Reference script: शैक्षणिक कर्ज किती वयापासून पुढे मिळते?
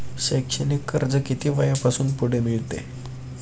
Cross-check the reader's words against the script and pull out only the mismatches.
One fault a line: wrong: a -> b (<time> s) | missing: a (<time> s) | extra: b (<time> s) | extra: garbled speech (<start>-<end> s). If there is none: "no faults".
no faults